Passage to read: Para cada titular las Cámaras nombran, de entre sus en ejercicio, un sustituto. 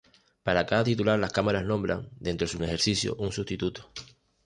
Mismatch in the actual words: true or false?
false